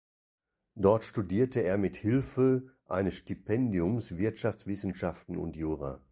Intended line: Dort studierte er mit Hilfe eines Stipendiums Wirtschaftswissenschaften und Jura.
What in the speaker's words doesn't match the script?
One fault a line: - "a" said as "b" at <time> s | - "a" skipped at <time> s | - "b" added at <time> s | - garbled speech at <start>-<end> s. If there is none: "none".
none